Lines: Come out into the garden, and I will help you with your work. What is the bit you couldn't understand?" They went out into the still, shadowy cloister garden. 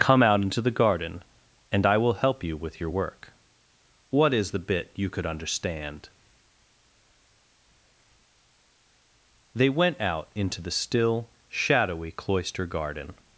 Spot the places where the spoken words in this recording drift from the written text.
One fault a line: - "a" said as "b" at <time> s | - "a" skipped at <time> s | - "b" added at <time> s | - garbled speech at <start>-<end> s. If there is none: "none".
- "couldn't" said as "could" at 5.1 s